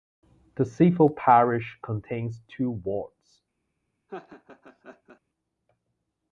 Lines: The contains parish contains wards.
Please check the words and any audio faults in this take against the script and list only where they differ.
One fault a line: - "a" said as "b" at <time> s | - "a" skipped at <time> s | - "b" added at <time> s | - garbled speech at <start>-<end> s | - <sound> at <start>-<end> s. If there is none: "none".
- "contains" said as "civil" at 0.7 s
- "two" added at 2.5 s
- laugh at 4.1-5.2 s